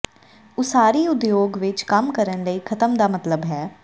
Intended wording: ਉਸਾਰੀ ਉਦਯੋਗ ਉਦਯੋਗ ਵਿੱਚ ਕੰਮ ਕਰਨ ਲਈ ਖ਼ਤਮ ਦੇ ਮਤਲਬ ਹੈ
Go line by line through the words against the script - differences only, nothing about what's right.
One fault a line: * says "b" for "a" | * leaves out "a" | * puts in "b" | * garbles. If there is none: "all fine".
* leaves out "ਉਦਯੋਗ"
* says "ਦਾ" for "ਦੇ"